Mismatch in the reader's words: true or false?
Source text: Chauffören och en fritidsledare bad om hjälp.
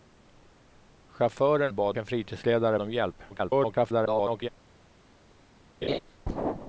true